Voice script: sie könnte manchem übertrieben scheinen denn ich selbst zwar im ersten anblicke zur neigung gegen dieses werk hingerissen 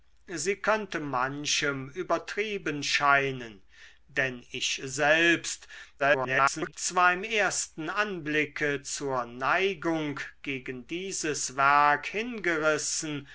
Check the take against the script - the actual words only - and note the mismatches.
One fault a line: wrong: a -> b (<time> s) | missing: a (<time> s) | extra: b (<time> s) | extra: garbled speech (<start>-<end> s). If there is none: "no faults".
extra: garbled speech (6.0-6.7 s)